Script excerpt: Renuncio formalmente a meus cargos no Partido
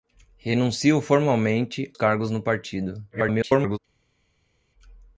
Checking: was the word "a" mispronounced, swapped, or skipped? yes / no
yes